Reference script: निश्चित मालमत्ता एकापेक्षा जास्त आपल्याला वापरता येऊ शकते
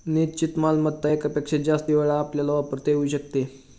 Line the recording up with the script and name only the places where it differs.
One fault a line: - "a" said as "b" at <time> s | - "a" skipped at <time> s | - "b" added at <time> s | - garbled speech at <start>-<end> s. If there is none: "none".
- "वेळा" added at 1.9 s